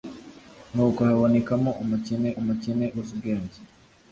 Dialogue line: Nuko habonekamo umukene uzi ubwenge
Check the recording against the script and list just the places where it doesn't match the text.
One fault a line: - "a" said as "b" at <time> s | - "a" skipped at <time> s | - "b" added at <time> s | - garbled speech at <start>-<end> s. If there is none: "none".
- "umukene" added at 2.4 s